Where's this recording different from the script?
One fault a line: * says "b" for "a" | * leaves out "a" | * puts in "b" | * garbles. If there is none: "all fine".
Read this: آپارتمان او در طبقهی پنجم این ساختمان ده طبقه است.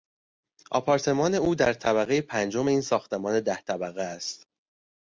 all fine